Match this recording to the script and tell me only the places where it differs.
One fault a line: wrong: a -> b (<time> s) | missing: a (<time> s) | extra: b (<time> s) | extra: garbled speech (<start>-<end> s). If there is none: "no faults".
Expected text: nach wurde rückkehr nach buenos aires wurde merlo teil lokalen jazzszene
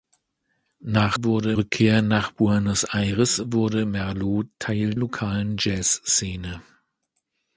no faults